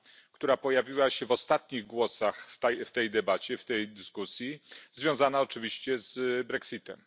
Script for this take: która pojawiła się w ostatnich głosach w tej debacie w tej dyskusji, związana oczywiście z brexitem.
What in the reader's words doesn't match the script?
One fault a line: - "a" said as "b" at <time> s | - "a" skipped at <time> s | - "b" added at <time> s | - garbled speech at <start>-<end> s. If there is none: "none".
none